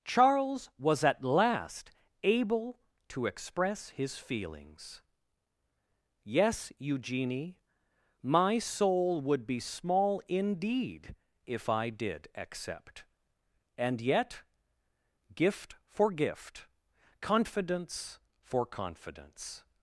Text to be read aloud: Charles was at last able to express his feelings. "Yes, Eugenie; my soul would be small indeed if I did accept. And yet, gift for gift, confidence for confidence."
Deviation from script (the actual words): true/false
false